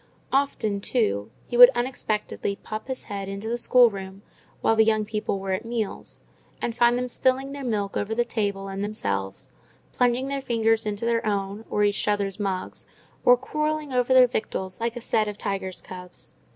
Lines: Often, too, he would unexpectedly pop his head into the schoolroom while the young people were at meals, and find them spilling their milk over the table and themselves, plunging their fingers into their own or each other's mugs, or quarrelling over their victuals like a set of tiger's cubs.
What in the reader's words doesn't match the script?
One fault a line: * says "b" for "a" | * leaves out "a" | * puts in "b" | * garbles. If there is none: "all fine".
all fine